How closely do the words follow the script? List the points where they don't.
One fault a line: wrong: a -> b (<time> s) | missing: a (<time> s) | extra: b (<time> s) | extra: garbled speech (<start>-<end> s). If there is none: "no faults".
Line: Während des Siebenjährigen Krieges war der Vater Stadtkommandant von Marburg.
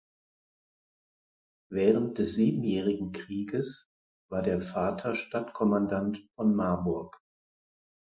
no faults